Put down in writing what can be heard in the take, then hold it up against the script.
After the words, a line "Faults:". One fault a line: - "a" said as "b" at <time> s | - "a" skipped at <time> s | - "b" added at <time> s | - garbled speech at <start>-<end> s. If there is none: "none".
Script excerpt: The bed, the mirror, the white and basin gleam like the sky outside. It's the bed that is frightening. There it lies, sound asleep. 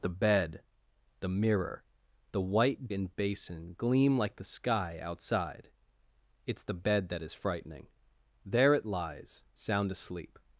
The bed, the mirror, the white and basin gleam like the sky outside. It's the bed that is frightening. There it lies, sound asleep.
Faults:
none